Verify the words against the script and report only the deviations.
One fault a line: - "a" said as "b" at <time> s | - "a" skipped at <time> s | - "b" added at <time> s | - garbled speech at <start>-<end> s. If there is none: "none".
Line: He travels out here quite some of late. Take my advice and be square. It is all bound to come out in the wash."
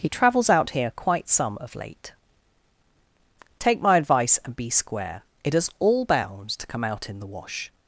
none